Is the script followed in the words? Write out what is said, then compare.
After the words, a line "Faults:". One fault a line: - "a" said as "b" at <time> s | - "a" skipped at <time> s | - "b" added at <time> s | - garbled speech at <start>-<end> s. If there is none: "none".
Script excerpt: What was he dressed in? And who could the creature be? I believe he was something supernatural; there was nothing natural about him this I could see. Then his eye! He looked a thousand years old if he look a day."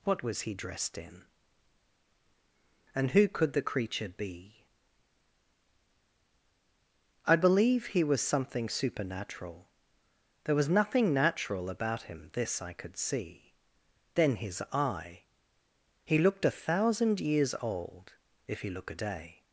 What was he dressed in? And who could the creature be? I believe he was something supernatural; there was nothing natural about him this I could see. Then his eye! He looked a thousand years old if he look a day."
Faults:
none